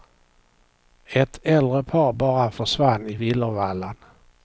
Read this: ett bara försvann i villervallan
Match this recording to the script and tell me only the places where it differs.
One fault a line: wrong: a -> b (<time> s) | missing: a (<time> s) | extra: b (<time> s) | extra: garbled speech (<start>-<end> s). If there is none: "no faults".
extra: äldre par (1.4 s)